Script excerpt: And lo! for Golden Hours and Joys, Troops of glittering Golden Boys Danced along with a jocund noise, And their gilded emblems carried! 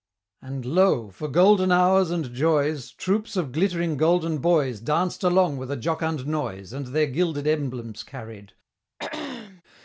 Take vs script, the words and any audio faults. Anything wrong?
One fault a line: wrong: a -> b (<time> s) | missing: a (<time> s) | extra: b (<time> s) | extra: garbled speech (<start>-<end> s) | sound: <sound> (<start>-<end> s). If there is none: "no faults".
sound: throat clearing (9.0-9.6 s)